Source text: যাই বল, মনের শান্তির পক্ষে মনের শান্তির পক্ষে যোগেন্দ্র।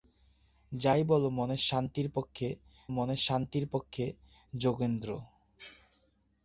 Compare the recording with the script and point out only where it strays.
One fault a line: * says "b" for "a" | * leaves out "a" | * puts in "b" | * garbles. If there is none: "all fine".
all fine